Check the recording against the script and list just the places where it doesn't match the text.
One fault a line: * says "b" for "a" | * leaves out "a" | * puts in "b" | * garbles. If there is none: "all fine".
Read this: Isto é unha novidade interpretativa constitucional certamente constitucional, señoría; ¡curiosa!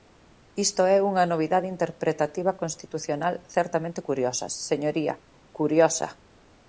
* says "curiosa" for "constitucional"